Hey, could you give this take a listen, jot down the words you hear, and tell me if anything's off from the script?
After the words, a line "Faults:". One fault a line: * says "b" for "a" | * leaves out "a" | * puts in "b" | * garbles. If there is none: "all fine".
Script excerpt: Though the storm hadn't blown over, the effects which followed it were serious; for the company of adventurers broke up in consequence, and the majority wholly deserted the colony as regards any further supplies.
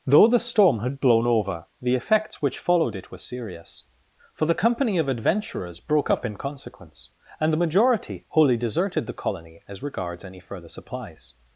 Though the storm had blown over, the effects which followed it were serious; for the company of adventurers broke up in consequence, and the majority wholly deserted the colony as regards any further supplies.
Faults:
* says "had" for "hadn't"